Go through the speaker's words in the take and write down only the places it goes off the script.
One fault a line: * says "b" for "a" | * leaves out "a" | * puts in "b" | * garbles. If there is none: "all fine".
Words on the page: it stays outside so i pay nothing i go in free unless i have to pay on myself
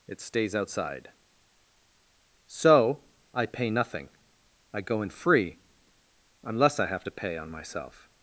all fine